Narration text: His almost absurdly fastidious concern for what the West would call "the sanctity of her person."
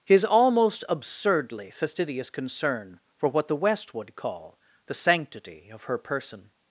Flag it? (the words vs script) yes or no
no